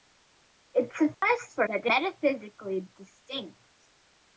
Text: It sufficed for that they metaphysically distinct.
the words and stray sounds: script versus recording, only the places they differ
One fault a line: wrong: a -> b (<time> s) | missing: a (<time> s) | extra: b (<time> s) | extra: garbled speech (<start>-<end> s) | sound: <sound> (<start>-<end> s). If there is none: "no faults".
sound: dropout (1.1-1.2 s)